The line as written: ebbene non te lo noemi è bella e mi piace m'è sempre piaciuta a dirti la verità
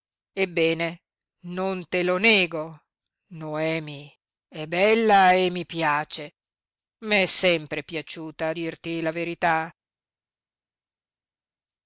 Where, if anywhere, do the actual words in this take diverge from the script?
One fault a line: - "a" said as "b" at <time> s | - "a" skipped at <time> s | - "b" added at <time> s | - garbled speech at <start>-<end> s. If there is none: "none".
- "nego" added at 2.2 s